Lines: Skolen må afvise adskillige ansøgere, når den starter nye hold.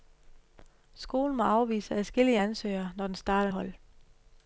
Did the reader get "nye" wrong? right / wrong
wrong